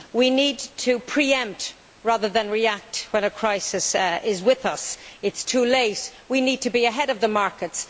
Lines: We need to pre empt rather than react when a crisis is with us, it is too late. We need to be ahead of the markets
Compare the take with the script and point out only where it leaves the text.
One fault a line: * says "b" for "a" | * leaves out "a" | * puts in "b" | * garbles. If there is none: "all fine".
all fine